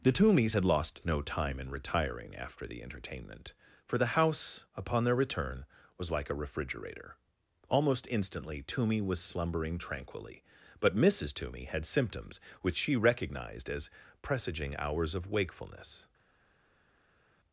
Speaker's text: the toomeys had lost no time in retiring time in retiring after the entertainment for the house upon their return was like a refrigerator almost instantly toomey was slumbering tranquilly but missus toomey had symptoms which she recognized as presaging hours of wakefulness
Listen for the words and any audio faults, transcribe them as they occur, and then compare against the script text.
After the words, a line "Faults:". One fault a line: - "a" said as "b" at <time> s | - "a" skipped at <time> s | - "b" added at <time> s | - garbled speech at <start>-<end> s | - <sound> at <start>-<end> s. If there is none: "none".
the toomeys had lost no time in retiring after the entertainment for the house upon their return was like a refrigerator almost instantly toomey was slumbering tranquilly but missus toomey had symptoms which she recognized as presaging hours of wakefulness
Faults:
- "time in retiring" skipped at 2.4 s